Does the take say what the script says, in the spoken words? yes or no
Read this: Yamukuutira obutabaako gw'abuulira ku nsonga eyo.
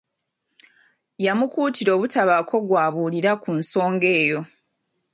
yes